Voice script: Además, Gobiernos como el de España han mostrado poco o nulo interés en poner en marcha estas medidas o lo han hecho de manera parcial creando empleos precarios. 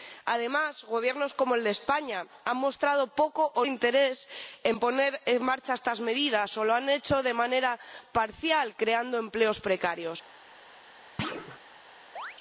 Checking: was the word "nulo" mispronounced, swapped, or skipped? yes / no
yes